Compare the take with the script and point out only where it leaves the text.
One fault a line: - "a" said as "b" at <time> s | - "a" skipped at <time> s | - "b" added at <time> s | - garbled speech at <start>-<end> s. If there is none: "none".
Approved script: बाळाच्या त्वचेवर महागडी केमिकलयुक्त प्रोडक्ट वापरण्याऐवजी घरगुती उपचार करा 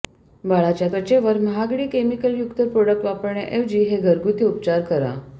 - "हे" added at 3.8 s